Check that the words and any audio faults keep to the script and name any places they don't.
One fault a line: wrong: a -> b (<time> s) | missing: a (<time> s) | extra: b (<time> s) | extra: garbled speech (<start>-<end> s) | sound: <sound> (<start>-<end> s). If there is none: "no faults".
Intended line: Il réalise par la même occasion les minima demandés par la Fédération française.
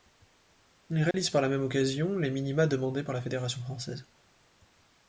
sound: dropout (1.1-1.1 s)